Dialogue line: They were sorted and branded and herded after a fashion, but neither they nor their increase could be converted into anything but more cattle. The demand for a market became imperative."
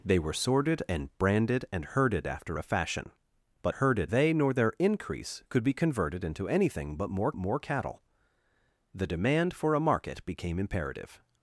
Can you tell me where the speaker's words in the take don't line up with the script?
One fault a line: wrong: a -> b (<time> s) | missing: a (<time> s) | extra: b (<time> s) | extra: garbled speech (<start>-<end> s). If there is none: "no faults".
wrong: neither -> herded (3.7 s)
extra: more (7.4 s)